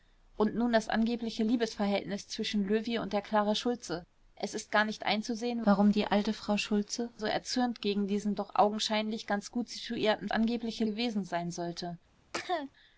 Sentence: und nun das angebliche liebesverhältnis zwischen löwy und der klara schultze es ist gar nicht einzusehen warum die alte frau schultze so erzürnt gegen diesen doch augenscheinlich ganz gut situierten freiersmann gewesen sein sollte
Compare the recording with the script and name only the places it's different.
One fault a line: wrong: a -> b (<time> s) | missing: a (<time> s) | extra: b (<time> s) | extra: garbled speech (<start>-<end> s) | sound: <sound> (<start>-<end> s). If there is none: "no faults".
wrong: freiersmann -> angebliche (10.3 s)
sound: cough (12.3-12.7 s)